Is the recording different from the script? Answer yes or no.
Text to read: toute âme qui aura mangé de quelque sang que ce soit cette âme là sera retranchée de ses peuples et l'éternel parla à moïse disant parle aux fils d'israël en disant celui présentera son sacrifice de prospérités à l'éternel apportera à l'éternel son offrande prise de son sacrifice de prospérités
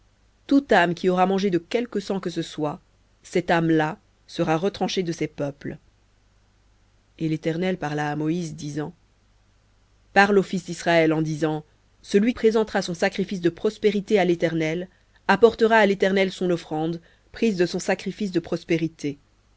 no